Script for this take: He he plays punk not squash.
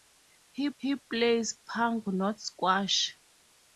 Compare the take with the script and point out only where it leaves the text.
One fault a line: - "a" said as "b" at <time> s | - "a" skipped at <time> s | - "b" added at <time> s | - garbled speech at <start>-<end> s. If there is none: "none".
none